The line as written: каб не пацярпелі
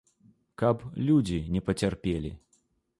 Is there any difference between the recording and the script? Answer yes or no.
yes